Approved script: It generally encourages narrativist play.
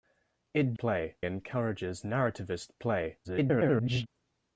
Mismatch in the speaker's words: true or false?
true